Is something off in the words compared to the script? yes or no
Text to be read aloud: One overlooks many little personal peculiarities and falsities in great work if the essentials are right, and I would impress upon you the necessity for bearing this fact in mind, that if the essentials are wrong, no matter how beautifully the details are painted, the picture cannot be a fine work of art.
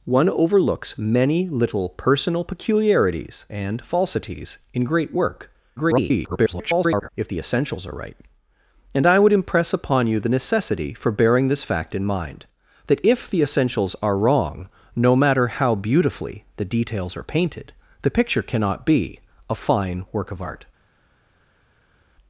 yes